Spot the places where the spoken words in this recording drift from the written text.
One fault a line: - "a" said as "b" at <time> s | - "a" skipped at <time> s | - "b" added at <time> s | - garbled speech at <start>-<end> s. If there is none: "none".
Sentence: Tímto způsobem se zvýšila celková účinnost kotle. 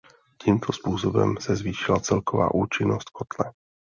none